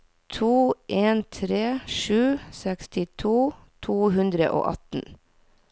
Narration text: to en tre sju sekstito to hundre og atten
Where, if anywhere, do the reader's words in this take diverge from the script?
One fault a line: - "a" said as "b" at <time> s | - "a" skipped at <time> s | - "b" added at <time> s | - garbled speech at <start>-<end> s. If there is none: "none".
none